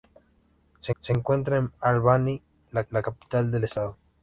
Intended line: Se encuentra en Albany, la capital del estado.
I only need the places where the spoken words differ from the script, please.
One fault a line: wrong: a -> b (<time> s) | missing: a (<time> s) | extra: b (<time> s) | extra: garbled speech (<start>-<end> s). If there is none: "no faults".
extra: se (1.0 s)
extra: la (2.9 s)